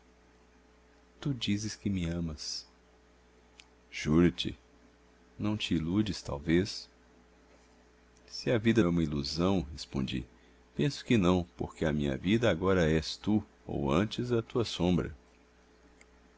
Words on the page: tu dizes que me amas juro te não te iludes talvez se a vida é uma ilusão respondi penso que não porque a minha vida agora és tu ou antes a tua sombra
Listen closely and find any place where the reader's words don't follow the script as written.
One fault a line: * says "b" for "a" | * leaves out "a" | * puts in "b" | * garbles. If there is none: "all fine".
all fine